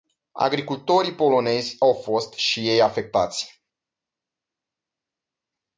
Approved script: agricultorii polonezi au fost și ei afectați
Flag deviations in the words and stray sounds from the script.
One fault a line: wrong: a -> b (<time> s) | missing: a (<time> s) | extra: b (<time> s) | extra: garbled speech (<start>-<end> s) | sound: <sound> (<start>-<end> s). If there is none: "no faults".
no faults